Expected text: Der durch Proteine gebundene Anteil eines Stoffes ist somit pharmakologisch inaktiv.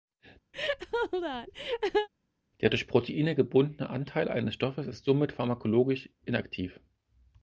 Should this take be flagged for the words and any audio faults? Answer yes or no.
yes